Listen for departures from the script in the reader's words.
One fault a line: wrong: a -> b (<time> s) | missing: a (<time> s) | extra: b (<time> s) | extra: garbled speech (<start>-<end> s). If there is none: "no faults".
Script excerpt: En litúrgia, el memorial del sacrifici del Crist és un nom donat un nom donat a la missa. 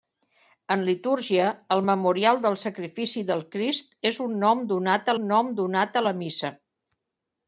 no faults